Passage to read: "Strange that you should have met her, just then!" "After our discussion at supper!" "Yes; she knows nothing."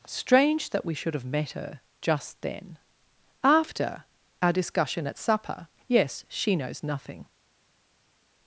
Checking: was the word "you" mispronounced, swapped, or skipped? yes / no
yes